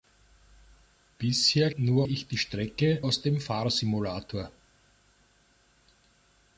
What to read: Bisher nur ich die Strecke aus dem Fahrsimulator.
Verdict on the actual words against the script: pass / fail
pass